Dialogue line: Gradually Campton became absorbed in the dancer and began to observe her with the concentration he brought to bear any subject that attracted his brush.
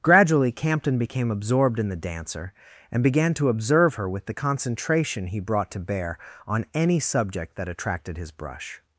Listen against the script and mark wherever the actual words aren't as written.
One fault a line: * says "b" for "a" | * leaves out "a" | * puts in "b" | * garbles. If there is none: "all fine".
* puts in "on"